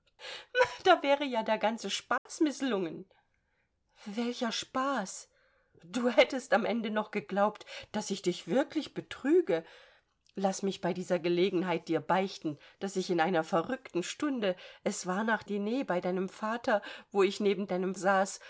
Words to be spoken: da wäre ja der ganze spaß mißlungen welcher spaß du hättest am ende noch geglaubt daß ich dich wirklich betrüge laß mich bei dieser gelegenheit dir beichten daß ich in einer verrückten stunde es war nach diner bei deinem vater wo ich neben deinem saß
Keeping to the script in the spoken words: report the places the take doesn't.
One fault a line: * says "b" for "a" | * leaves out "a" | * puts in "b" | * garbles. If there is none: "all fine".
all fine